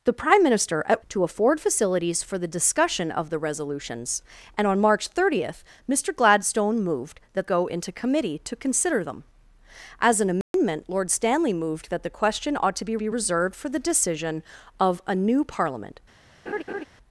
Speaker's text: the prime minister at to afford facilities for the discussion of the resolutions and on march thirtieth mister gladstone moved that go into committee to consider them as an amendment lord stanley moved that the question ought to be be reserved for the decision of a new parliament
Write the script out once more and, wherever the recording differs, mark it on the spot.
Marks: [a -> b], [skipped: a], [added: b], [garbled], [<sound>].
the prime minister at to afford facilities for the discussion of the resolutions and on march thirtieth mister gladstone moved that go into committee to consider them as an amendment [dropout] lord stanley moved that the question ought to be be reserved for the decision of a new parliament [laugh]